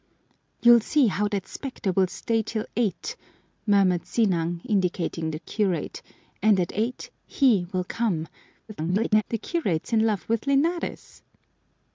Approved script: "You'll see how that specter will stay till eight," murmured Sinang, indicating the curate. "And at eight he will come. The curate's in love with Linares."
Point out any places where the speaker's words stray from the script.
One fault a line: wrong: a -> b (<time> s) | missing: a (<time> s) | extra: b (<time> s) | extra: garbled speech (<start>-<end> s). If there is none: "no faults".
extra: garbled speech (8.7-9.2 s)